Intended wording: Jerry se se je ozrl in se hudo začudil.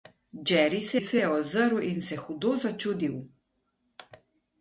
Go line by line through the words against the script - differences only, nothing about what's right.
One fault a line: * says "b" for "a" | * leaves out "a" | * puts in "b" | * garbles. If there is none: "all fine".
all fine